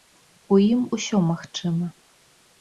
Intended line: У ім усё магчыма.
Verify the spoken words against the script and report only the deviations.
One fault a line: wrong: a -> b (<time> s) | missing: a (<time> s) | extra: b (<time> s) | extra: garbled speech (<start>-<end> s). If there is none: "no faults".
no faults